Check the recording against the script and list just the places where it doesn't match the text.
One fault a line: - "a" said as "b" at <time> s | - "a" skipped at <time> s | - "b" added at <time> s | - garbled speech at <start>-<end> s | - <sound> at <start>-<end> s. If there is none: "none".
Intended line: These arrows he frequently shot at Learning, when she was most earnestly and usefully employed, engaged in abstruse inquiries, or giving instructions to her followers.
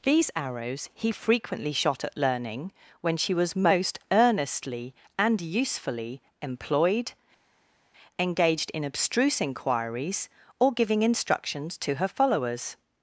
none